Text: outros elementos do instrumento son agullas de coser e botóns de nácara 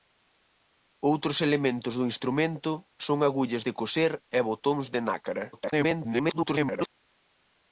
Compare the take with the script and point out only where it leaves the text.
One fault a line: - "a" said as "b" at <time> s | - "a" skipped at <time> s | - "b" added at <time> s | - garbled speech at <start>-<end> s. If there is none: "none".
- garbled speech at 5.5-6.9 s